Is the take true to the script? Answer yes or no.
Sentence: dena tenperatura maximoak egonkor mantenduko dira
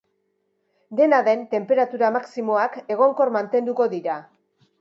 no